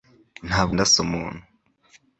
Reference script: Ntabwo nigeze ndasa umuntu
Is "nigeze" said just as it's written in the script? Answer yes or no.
no